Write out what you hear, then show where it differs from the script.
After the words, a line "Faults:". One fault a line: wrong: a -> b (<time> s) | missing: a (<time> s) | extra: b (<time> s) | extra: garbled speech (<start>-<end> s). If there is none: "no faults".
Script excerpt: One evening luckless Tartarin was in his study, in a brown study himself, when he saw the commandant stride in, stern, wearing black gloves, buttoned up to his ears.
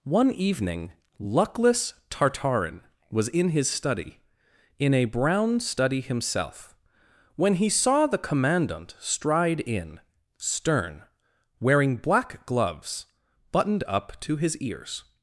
One evening luckless Tartarin was in his study, in a brown study himself, when he saw the commandant stride in, stern, wearing black gloves, buttoned up to his ears.
Faults:
no faults